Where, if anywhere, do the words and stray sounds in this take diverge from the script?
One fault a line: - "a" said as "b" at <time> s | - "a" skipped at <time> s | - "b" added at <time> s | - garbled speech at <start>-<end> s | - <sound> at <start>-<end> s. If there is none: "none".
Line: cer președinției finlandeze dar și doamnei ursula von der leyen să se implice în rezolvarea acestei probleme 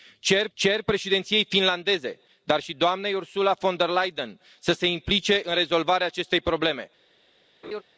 - "cer" added at 0.5 s
- laugh at 7.6-7.8 s